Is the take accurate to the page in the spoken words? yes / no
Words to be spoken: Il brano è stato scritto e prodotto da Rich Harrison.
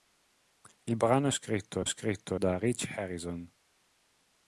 no